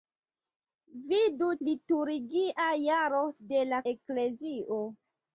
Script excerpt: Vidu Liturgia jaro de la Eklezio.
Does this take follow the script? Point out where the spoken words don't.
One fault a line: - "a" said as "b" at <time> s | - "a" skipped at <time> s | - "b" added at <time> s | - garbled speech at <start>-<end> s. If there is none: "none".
none